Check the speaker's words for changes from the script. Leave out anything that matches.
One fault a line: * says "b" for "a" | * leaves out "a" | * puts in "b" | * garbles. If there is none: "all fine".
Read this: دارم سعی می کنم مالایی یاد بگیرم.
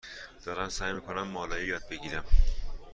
all fine